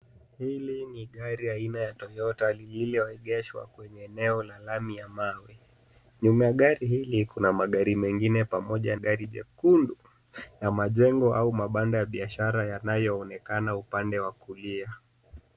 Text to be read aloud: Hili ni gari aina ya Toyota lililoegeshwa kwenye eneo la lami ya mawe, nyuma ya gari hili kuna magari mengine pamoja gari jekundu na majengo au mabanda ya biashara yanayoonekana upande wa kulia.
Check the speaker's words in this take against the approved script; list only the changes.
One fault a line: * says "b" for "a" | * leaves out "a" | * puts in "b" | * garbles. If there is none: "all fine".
all fine